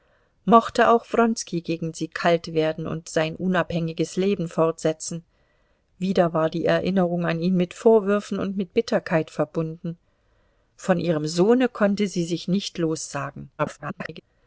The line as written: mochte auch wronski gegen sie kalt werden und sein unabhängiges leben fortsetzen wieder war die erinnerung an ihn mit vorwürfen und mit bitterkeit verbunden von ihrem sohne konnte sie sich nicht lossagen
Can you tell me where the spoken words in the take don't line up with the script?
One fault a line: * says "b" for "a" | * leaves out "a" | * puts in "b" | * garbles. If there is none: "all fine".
* garbles